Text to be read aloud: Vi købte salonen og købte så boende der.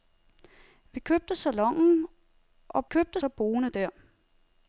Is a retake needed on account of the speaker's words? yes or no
no